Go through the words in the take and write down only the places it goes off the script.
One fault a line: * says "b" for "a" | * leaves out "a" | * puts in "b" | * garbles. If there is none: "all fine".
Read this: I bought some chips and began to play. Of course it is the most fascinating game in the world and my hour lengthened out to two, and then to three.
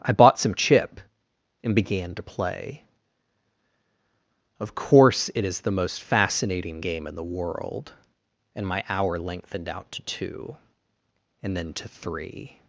* says "chip" for "chips"